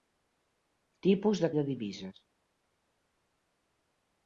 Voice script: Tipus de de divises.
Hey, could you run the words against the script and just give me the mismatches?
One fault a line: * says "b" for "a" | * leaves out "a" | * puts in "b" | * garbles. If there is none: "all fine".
all fine